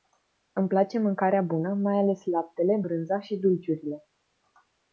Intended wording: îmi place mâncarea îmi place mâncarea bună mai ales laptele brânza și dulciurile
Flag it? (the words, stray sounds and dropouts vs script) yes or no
yes